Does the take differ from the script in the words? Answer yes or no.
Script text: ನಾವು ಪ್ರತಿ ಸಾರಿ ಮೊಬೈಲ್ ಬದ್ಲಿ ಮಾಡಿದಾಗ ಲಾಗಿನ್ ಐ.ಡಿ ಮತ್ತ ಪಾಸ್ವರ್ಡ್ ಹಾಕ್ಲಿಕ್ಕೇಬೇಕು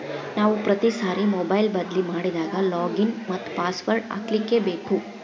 yes